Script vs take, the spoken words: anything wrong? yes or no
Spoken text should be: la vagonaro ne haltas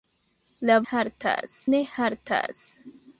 yes